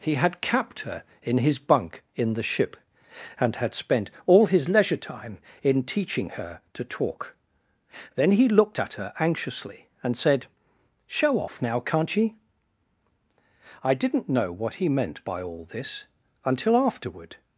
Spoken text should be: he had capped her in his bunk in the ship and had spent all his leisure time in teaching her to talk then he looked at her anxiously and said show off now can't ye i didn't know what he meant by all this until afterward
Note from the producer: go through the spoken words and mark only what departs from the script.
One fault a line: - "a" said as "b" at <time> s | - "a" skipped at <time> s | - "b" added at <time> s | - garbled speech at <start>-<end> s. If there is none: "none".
none